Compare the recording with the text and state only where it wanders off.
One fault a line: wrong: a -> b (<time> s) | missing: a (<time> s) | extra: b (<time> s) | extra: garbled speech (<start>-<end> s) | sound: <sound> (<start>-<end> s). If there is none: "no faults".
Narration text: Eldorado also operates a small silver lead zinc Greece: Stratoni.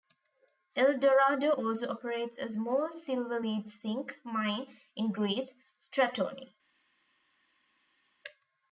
extra: mine in (4.2 s)